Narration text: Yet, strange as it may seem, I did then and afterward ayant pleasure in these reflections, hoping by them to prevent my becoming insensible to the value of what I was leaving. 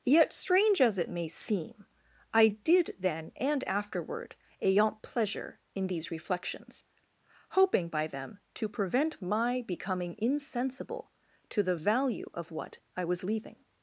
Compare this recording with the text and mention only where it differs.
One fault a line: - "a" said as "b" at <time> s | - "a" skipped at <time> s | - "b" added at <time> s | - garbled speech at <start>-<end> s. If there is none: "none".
none